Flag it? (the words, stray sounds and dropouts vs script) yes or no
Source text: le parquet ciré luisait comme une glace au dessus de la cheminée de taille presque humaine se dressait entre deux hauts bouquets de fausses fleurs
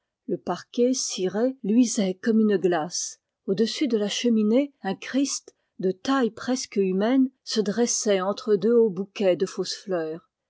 yes